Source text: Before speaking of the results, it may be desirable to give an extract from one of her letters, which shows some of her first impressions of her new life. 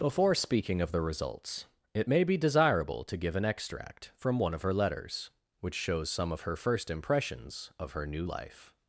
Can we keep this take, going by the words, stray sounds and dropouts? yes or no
yes